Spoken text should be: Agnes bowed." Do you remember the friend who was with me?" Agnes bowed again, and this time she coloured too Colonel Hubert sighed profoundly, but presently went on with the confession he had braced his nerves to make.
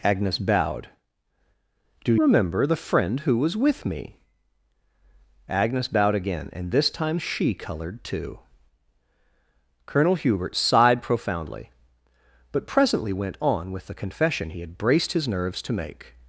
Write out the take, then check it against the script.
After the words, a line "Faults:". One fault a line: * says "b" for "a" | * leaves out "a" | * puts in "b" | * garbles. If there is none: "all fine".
Agnes bowed." Do remember the friend who was with me?" Agnes bowed again, and this time she coloured too Colonel Hubert sighed profoundly, but presently went on with the confession he had braced his nerves to make.
Faults:
* leaves out "you"